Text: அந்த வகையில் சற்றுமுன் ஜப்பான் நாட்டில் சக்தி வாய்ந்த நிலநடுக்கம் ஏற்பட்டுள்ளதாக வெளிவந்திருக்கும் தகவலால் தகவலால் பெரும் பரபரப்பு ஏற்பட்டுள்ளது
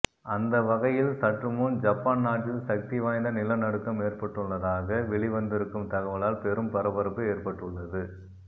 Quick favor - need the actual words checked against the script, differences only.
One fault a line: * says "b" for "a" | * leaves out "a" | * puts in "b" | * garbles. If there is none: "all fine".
* leaves out "தகவலால்"